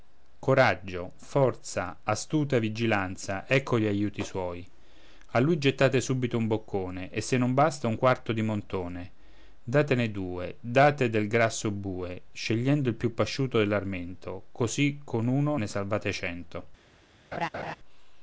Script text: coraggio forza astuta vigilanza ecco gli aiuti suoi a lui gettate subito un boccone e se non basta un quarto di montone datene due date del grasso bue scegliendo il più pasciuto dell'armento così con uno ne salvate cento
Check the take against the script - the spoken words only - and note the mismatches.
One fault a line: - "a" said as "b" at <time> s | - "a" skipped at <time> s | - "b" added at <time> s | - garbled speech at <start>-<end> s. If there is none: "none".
none